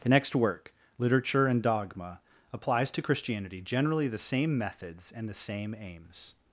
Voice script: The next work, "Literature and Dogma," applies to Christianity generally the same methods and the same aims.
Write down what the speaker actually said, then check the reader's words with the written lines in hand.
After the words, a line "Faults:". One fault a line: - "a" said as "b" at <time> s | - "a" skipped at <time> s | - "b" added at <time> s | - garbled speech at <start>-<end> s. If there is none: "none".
The next work, "Literature and Dogma," applies to Christianity generally the same methods and the same aims.
Faults:
none